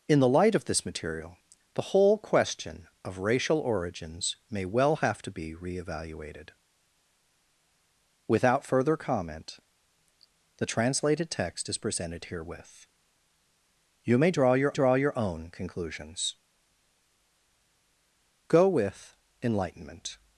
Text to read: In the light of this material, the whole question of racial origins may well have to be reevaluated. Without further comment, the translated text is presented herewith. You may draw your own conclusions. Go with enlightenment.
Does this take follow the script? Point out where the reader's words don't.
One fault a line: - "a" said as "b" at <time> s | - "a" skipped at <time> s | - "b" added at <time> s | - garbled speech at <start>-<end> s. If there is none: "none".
- "draw your" added at 14.7 s